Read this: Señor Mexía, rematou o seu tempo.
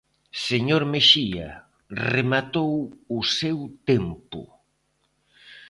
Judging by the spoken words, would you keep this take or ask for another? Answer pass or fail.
pass